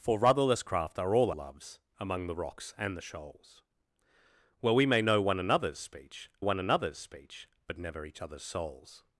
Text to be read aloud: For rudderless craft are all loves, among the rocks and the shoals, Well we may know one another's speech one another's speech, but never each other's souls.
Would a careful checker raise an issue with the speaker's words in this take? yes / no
no